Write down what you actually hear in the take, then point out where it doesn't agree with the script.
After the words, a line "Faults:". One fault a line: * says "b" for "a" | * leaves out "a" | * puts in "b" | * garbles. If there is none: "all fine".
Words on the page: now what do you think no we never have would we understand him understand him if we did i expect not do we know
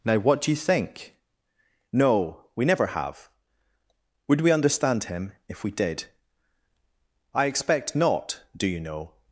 now what do you think no we never have would we understand him if we did i expect not do you know
Faults:
* leaves out "understand him"
* says "you" for "we"